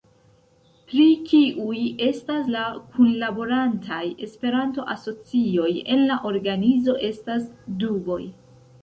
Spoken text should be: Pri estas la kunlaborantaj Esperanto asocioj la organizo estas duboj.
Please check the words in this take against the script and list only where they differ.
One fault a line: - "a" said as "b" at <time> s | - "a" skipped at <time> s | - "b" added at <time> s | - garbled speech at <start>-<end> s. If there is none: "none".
- "kiuj" added at 1.3 s
- "en" added at 5.9 s